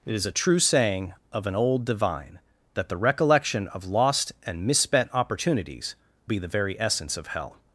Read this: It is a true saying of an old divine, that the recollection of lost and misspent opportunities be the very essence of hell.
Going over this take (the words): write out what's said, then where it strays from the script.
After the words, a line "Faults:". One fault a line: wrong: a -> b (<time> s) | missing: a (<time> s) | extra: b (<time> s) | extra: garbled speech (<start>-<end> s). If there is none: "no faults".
It is a true saying of an old divine, that the recollection of lost and misspent opportunities be the very essence of hell.
Faults:
no faults